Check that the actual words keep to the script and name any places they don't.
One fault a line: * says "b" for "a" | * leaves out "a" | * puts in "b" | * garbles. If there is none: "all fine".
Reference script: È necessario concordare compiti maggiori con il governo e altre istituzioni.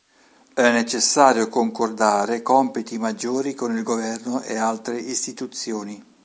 all fine